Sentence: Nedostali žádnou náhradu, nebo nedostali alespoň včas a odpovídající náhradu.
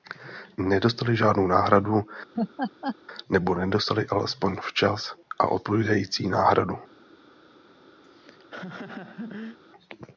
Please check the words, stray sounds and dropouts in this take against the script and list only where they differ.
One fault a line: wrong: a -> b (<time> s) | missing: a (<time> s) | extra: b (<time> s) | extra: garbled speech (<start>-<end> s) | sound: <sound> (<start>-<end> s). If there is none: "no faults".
sound: laugh (2.3-3.0 s)
sound: laugh (8.0-9.6 s)